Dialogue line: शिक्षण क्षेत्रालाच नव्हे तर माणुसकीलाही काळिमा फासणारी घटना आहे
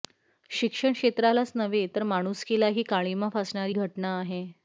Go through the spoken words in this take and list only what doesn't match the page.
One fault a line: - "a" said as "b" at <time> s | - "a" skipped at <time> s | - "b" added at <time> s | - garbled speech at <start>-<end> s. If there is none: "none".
none